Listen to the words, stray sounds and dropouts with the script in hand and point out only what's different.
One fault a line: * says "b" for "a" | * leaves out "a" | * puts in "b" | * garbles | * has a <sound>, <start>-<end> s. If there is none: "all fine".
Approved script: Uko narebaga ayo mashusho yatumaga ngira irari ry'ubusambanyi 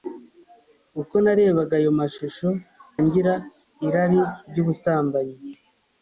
* leaves out "yatumaga"